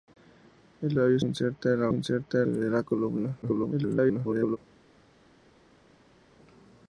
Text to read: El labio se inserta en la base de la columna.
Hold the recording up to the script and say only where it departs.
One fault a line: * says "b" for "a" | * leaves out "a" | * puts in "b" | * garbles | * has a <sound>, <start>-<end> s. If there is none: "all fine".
* leaves out "se"
* says "inserta" for "base"
* garbles